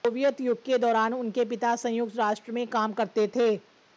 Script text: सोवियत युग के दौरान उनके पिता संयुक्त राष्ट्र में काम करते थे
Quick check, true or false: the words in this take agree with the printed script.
true